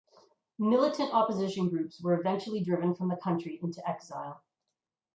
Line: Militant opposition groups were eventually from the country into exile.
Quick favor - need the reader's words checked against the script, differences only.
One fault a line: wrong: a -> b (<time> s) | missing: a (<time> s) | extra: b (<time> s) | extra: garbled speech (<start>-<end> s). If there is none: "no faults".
extra: driven (2.6 s)